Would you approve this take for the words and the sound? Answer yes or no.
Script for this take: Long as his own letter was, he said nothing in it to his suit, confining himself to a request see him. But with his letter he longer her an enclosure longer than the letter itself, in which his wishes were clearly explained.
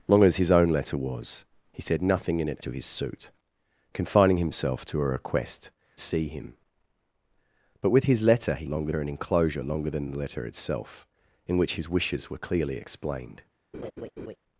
no